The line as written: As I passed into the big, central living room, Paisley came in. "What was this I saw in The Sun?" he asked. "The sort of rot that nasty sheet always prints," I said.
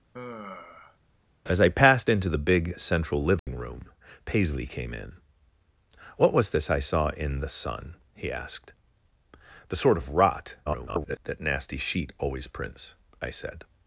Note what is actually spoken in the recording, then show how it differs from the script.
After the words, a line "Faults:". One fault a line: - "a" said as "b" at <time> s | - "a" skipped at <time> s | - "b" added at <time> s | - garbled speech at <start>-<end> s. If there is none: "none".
As I passed into the big, central living room, Paisley came in. "What was this I saw in The Sun?" he asked. "The sort of rot [garbled] that nasty sheet always prints," I said.
Faults:
- garbled speech at 10.7-11.2 s